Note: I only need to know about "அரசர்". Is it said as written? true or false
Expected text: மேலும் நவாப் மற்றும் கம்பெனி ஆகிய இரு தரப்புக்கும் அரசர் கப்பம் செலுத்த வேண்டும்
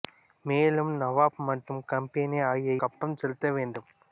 false